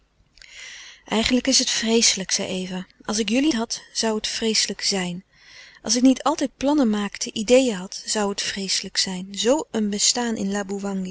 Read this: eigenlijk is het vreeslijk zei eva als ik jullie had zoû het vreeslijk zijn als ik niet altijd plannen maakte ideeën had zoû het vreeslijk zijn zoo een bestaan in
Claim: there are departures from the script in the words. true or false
false